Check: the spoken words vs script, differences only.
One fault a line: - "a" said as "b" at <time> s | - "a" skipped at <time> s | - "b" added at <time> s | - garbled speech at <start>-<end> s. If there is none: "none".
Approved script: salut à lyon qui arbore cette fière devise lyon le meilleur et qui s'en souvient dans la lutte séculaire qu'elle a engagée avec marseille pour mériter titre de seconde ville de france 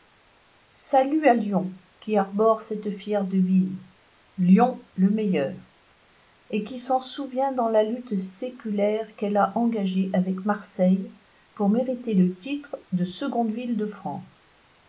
- "le" added at 12.1 s